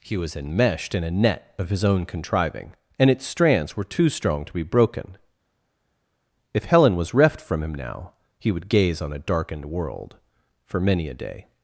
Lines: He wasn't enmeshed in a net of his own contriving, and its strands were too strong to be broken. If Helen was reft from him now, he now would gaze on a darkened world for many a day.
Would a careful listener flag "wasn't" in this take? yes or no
yes